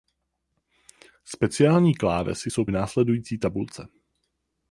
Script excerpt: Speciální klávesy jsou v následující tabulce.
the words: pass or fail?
pass